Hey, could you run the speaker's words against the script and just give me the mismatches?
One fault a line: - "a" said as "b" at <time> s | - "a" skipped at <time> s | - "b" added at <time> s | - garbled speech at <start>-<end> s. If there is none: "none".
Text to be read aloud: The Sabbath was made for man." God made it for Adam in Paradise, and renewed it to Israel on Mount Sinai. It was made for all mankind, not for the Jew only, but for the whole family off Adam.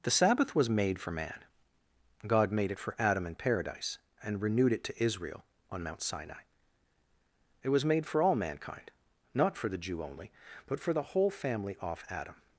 none